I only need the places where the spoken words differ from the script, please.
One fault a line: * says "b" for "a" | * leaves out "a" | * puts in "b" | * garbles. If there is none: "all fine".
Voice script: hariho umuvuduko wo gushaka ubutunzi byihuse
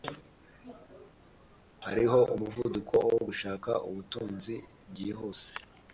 all fine